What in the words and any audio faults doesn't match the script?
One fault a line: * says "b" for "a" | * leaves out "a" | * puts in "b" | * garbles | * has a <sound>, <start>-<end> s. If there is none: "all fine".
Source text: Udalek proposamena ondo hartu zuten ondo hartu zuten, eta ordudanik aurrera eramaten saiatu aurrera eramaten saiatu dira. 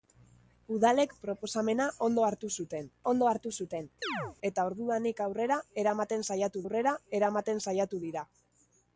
* has a chirp, 4.0-4.4 s